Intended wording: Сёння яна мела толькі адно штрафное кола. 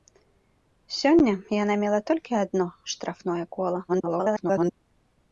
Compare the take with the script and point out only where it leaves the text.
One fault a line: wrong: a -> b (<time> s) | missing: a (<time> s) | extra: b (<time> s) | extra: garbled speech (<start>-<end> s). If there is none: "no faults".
extra: garbled speech (3.9-4.7 s)